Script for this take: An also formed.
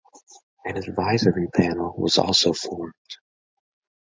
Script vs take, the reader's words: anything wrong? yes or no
yes